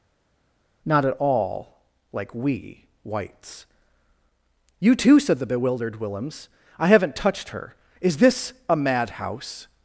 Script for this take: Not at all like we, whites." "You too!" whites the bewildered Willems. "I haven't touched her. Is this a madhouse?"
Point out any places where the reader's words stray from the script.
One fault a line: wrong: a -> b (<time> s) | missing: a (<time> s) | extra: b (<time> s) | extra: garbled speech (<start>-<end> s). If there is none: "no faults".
wrong: whites -> said (5.2 s)